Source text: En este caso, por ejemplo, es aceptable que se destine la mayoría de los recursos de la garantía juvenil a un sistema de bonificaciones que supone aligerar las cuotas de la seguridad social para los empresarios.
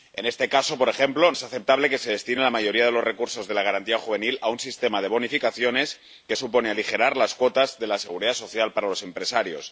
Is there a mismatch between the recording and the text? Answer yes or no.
no